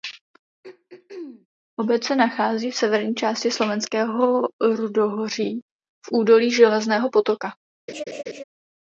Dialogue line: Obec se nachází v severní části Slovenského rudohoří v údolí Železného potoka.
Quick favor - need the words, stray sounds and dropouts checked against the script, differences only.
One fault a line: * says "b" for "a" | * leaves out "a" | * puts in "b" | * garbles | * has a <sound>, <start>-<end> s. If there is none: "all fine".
* has a throat clearing, 0.6-1.5 s
* has a laugh, 7.9-8.4 s